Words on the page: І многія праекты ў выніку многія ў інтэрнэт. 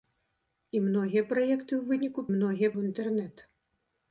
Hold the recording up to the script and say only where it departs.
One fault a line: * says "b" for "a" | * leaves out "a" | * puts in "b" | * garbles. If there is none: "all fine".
all fine